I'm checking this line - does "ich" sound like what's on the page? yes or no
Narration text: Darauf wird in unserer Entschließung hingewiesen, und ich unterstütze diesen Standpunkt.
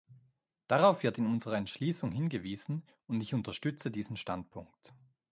yes